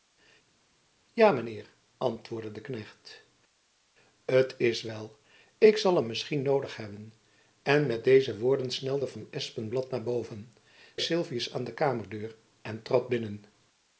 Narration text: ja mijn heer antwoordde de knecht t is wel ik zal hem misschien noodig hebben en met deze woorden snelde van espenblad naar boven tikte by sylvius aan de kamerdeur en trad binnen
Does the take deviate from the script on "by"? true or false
true